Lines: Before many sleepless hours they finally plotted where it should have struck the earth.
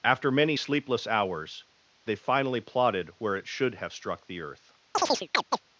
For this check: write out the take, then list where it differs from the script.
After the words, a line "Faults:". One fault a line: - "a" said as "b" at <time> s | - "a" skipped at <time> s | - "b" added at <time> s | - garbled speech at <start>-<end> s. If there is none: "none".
After many sleepless hours they finally plotted where it should have struck the earth.
Faults:
- "Before" said as "After" at 0.0 s